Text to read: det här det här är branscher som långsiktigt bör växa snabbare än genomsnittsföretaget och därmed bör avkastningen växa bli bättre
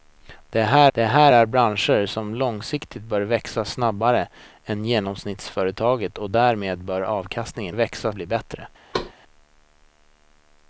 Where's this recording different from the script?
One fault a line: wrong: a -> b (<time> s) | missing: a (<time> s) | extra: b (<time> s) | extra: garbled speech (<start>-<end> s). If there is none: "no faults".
no faults